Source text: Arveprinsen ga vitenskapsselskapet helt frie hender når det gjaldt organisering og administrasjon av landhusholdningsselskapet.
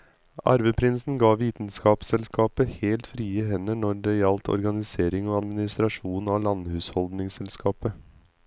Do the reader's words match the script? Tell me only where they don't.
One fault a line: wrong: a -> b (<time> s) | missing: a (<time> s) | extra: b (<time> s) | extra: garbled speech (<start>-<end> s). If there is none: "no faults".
no faults